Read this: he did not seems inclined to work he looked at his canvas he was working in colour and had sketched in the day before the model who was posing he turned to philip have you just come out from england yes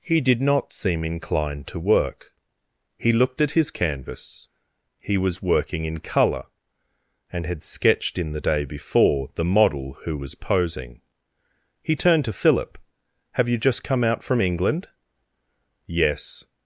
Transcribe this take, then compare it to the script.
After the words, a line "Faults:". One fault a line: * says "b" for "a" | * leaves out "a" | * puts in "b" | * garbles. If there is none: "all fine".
he did not seem inclined to work he looked at his canvas he was working in colour and had sketched in the day before the model who was posing he turned to philip have you just come out from england yes
Faults:
* says "seem" for "seems"